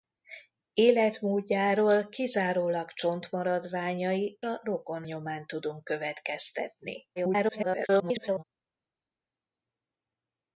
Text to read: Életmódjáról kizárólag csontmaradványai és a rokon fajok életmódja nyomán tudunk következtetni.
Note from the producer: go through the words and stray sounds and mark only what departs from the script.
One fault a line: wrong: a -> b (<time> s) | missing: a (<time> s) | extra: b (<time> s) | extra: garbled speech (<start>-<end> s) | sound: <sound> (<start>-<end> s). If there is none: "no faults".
missing: és (4.4 s)
missing: fajok életmódja (5.0 s)
extra: garbled speech (7.2-8.4 s)